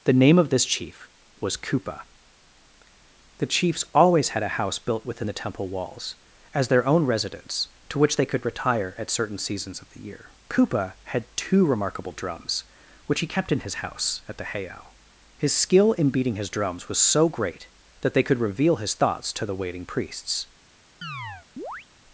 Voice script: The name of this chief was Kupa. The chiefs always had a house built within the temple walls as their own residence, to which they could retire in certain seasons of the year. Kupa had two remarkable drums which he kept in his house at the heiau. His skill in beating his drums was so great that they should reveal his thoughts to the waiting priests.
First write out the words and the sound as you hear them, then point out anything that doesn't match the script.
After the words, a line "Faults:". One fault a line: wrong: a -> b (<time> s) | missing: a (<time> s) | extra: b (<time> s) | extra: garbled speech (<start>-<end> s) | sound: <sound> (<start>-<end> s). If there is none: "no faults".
The name of this chief was Kupa. The chiefs always had a house built within the temple walls as their own residence, to which they could retire at certain seasons of the year. Kupa had two remarkable drums which he kept in his house at the heiau. His skill in beating his drums was so great that they could reveal his thoughts to the waiting priests.
Faults:
wrong: in -> at (9.0 s)
wrong: should -> could (18.2 s)
sound: chirp (21.0-21.9 s)